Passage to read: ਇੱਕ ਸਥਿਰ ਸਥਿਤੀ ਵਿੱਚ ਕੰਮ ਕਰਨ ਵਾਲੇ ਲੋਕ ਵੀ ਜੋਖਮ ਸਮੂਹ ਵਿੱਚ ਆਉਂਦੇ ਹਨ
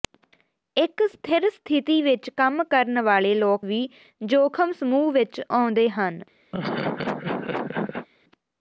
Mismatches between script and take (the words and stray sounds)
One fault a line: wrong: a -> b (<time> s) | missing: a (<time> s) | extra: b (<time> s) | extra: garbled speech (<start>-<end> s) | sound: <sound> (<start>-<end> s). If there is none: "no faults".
sound: laugh (6.5-8.1 s)